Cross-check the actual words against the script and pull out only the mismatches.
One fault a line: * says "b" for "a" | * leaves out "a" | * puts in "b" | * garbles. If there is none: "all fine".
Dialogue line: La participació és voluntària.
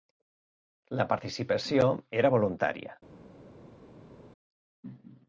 * says "era" for "és"